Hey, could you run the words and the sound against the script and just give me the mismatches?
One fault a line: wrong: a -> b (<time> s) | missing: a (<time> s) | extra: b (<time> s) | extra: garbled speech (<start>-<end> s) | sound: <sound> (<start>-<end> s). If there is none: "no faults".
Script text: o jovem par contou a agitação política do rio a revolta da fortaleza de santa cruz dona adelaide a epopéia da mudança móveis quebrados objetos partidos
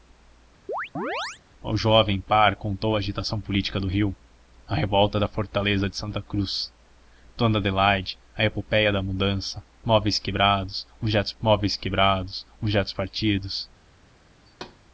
sound: chirp (0.7-1.4 s)
extra: móveis quebrados objetos (11.4 s)
sound: thud (14.5-14.8 s)